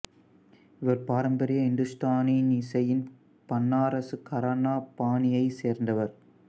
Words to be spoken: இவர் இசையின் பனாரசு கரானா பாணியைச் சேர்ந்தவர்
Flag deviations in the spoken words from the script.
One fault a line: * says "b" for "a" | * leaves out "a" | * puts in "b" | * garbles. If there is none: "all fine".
* puts in "பாரம்பரிய இந்துஸ்தானி"